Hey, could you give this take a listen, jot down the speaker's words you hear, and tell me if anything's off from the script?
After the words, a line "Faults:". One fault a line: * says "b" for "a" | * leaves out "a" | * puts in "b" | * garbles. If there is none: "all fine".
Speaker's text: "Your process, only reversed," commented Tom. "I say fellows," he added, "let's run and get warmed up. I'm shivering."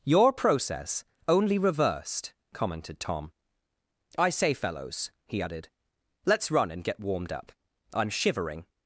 "Your process, only reversed," commented Tom. "I say fellows," he added, "let's run and get warmed up. I'm shivering."
Faults:
all fine